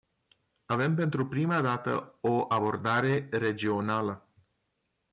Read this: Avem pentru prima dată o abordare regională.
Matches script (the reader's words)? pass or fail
pass